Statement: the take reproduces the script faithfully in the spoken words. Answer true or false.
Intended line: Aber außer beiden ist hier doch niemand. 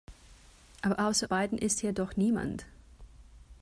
true